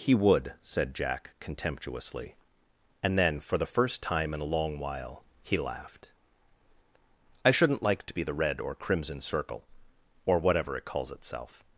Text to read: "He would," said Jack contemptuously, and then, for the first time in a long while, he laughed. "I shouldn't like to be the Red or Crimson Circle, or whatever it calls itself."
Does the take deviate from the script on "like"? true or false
false